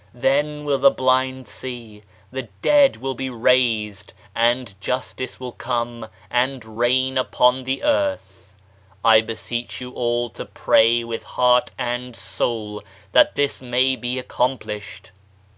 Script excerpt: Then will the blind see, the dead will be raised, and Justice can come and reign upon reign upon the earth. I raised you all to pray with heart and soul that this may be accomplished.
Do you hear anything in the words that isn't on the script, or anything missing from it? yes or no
yes